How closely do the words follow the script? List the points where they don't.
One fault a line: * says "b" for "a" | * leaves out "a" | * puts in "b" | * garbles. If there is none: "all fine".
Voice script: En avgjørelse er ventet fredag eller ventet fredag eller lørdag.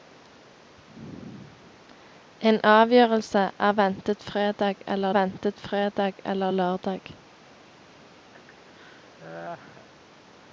all fine